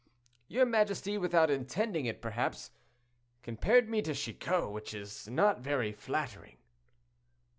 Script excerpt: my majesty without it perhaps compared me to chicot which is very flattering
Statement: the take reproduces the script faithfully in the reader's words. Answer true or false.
false